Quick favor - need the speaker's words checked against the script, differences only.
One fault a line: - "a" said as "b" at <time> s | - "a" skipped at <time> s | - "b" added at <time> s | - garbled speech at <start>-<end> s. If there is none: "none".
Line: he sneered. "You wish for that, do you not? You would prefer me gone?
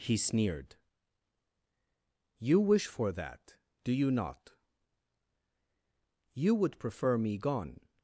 none